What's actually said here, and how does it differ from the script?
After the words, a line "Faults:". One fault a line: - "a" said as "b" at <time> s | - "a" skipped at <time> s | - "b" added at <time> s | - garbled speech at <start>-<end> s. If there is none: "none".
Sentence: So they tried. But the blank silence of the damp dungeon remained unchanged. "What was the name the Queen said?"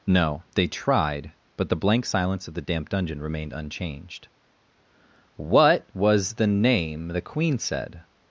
No they tried. But the blank silence of the damp dungeon remained unchanged. "What was the name the Queen said?"
Faults:
- "So" said as "No" at 0.1 s